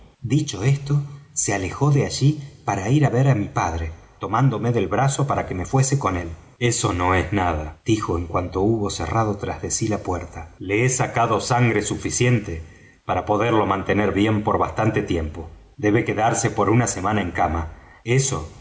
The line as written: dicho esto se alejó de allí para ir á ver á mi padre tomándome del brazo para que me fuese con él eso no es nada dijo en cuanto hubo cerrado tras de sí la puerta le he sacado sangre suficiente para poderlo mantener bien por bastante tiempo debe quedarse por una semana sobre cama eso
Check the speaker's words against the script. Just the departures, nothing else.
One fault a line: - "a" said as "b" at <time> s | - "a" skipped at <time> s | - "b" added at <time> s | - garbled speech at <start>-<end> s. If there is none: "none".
- "sobre" said as "en" at 17.2 s